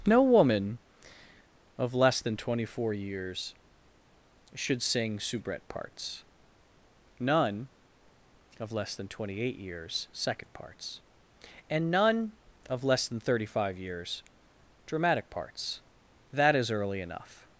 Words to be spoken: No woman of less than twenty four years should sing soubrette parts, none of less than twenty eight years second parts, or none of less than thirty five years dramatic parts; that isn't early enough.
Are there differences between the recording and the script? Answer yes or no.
yes